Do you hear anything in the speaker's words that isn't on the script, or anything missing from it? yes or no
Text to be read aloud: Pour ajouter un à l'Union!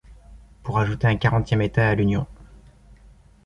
yes